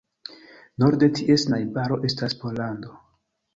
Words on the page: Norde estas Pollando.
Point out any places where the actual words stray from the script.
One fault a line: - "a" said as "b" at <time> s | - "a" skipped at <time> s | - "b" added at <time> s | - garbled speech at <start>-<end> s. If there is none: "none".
- "ties najbaro" added at 1.2 s